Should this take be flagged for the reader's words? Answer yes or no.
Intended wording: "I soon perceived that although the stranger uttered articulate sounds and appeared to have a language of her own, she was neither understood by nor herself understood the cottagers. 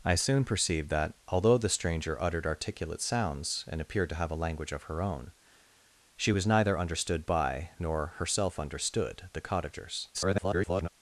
yes